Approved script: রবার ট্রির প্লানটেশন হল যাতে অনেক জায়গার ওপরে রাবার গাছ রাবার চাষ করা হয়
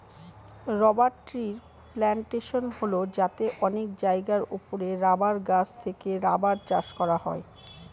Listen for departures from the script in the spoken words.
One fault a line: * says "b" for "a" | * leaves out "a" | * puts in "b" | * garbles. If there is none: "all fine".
* puts in "থেকে"